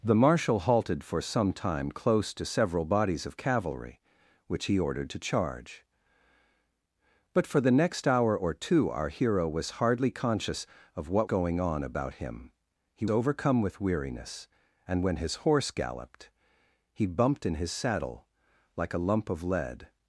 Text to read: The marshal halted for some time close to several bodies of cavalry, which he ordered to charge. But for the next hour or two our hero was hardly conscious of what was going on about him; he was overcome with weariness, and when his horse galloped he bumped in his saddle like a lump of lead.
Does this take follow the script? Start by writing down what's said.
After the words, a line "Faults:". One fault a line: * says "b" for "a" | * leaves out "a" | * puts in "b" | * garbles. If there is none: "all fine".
The marshal halted for some time close to several bodies of cavalry, which he ordered to charge. But for the next hour or two our hero was hardly conscious of what going on about him; he overcome with weariness, and when his horse galloped he bumped in his saddle like a lump of lead.
Faults:
* leaves out "was"
* leaves out "was"